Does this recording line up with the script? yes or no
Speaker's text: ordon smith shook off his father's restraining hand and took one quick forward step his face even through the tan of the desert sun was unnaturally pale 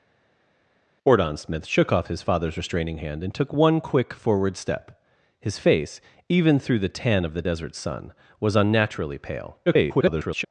no